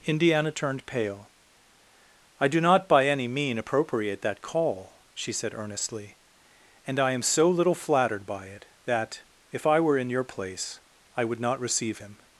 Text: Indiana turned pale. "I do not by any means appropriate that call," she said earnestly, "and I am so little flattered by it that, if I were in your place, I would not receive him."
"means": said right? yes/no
no